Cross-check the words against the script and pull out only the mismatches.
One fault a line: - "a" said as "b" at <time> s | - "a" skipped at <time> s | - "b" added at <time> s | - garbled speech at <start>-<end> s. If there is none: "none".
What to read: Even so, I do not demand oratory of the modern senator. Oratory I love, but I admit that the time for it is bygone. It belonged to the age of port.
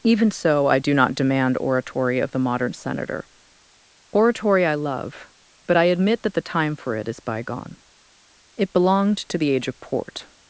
none